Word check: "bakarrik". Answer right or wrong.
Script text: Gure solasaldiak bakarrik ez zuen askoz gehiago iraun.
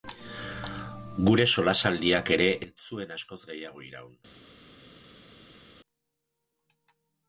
wrong